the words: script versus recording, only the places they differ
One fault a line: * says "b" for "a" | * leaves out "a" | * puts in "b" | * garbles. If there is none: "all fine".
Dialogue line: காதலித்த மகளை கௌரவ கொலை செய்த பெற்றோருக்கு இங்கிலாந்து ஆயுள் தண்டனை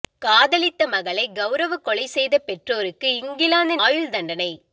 all fine